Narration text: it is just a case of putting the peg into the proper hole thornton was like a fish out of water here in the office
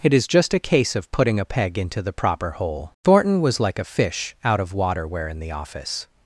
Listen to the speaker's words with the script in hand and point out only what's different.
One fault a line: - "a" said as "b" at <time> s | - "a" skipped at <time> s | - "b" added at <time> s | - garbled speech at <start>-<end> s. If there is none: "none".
- "the" said as "a" at 1.4 s
- "here" said as "where" at 5.1 s